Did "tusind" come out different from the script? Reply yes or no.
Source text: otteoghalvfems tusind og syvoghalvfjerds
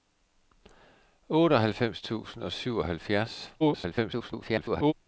no